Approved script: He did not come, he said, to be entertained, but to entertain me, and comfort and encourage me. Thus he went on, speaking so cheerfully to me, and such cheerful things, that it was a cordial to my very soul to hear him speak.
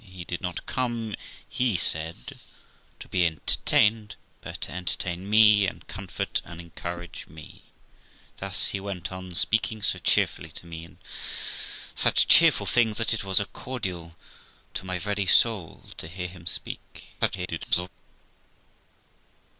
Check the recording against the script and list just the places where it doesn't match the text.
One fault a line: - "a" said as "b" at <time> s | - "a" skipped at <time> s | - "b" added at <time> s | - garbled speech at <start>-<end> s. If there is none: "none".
- garbled speech at 17.2-17.9 s